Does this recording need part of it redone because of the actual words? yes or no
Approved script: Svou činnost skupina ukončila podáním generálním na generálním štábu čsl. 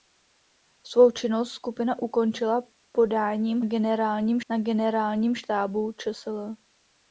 no